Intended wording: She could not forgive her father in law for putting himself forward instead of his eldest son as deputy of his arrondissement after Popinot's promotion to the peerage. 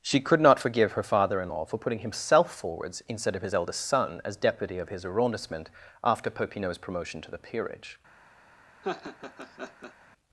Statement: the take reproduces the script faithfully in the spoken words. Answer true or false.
false